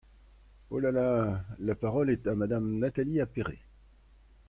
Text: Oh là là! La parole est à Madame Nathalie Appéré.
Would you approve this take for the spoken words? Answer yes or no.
yes